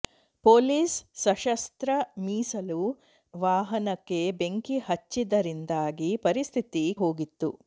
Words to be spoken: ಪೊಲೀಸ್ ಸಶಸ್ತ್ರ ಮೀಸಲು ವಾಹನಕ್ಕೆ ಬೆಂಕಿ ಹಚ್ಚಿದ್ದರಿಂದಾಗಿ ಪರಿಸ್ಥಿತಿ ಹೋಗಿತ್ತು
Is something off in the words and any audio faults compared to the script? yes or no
no